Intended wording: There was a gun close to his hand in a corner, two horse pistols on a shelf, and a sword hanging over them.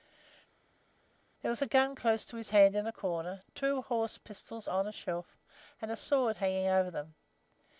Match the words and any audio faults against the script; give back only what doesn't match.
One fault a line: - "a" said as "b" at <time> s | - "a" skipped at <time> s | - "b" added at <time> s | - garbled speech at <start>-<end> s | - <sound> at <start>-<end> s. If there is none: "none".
none